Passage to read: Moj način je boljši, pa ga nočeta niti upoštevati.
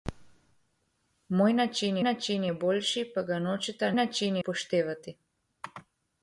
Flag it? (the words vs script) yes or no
yes